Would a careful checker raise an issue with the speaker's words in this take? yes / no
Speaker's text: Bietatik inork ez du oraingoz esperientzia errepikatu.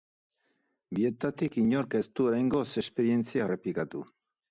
no